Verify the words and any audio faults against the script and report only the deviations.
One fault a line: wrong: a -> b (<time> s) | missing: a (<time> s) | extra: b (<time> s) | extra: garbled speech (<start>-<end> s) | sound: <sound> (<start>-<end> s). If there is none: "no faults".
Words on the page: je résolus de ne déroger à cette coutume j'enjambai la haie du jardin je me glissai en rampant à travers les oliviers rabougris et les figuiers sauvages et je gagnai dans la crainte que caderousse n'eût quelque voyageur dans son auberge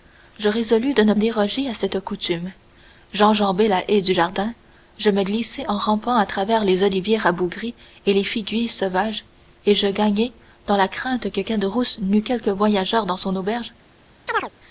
sound: chirp (14.3-14.5 s)